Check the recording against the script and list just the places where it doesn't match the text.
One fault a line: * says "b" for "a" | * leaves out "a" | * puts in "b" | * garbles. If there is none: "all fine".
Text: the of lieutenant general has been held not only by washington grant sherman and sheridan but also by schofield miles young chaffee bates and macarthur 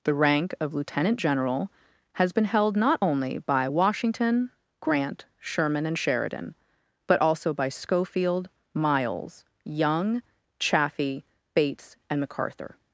* puts in "rank"